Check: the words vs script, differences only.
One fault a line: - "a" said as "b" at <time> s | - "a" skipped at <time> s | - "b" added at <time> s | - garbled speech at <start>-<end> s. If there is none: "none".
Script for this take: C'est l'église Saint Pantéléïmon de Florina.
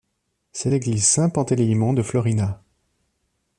none